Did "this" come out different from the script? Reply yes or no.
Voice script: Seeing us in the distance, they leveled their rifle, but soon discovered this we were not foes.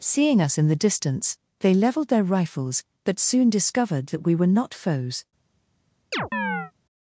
yes